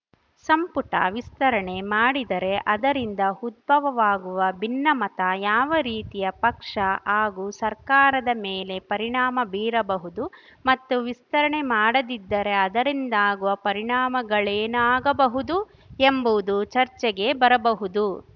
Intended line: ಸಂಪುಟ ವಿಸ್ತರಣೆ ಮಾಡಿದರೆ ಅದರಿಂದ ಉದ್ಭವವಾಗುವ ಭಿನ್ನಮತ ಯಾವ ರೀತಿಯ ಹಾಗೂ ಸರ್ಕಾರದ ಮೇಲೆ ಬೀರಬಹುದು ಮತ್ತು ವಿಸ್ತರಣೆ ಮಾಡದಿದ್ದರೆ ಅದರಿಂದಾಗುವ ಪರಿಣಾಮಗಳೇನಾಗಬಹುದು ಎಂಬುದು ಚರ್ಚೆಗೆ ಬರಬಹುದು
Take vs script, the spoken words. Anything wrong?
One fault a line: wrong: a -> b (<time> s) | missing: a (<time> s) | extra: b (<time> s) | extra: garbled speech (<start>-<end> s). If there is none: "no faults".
extra: ಪಕ್ಷ (6.4 s)
extra: ಪರಿಣಾಮ (8.9 s)